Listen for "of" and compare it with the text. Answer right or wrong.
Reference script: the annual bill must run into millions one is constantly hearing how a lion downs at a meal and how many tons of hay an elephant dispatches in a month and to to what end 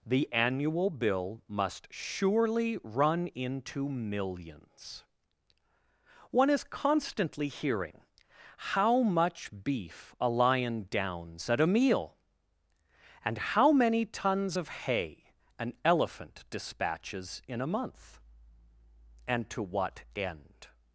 right